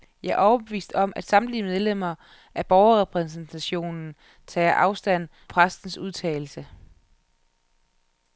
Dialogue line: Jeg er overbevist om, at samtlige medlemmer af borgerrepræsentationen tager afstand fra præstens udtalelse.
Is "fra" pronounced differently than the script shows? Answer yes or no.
yes